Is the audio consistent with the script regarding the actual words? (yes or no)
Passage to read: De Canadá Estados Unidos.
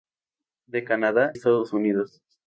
yes